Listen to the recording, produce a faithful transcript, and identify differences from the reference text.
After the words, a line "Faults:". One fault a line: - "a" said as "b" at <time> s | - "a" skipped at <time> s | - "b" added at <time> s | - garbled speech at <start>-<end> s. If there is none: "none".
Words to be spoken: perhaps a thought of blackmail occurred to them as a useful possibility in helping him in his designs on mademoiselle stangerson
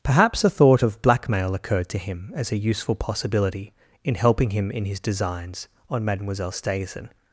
perhaps a thought of blackmail occurred to him as a useful possibility in helping him in his designs on mademoiselle stangerson
Faults:
- "them" said as "him" at 2.0 s